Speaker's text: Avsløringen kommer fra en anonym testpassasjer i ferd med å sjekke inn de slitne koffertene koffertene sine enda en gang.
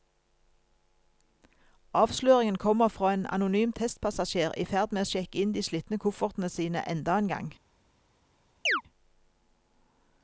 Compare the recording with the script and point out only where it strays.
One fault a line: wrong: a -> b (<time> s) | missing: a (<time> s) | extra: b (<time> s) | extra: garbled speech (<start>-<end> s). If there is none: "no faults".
missing: koffertene (6.5 s)